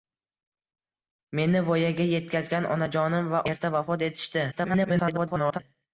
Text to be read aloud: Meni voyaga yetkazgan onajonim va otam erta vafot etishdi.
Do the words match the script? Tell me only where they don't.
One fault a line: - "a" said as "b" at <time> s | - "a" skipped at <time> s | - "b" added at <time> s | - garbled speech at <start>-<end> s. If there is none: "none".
- "otam" skipped at 3.4 s
- garbled speech at 4.5-5.6 s